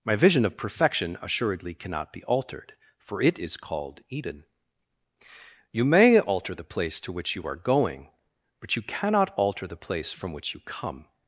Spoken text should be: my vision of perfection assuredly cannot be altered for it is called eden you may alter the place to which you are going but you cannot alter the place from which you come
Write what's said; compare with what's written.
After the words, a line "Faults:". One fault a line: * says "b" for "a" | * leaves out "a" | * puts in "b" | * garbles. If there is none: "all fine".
my vision of perfection assuredly cannot be altered for it is called eden you may alter the place to which you are going but you cannot alter the place from which you come
Faults:
all fine